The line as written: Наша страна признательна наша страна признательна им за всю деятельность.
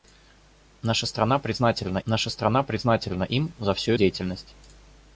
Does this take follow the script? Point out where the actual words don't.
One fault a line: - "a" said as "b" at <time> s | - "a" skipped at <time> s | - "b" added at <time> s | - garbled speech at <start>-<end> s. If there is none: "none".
none